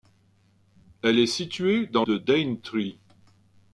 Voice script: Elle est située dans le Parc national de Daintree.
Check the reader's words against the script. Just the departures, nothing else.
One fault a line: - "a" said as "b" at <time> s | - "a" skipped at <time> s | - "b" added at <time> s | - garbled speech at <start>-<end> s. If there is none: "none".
- "le Parc national" skipped at 2.0 s